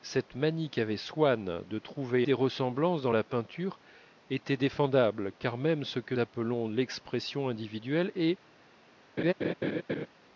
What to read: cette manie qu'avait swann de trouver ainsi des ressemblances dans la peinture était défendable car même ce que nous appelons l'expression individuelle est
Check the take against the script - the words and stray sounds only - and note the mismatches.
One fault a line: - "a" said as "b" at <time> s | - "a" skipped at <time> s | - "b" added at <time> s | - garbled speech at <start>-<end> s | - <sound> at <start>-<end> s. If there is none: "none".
- "ainsi" skipped at 2.3 s
- "nous" skipped at 6.2 s
- laugh at 9.2-10.1 s